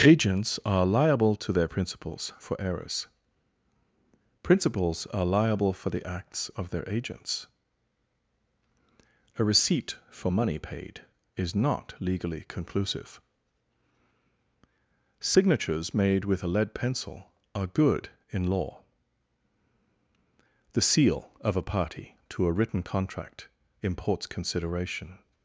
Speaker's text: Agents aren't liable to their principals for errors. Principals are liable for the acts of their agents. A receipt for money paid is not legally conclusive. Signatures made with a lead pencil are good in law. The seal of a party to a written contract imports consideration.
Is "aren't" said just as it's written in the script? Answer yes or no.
no